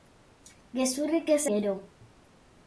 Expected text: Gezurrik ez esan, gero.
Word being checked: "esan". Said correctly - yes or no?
no